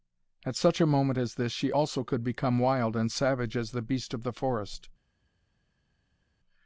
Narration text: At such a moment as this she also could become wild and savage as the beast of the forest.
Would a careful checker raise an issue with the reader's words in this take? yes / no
no